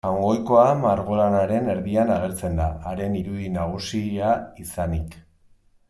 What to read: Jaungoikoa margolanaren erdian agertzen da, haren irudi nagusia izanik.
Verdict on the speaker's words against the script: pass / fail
pass